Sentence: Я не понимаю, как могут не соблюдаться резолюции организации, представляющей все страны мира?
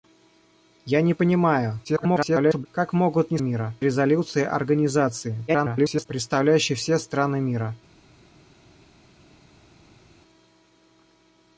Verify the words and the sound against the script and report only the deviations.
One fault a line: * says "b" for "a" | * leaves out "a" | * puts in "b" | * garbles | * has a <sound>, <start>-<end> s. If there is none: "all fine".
* garbles
* says "мира" for "соблюдаться"
* garbles